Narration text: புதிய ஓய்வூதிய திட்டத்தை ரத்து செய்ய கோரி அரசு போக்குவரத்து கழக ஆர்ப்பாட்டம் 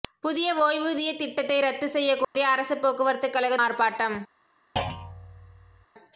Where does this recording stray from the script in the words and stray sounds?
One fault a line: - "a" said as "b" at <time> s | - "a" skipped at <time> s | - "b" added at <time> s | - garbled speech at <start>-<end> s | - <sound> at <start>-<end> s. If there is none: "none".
- dropout at 2.2-2.3 s
- thud at 4.8-5.9 s